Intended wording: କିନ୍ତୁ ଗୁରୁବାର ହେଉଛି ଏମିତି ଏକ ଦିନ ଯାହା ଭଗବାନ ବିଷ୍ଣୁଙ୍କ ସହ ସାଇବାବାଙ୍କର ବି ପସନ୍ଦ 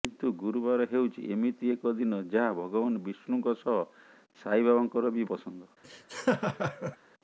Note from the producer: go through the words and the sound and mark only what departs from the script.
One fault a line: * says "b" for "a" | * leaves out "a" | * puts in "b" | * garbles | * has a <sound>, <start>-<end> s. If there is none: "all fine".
* has a laugh, 5.8-7.0 s